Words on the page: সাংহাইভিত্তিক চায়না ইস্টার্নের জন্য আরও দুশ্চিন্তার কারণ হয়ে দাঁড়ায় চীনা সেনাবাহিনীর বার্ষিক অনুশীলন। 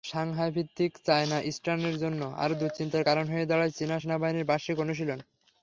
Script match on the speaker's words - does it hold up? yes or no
yes